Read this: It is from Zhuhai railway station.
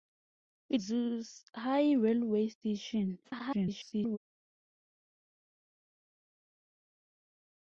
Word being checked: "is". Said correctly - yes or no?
no